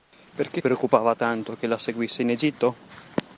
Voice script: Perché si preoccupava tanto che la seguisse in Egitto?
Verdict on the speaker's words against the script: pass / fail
fail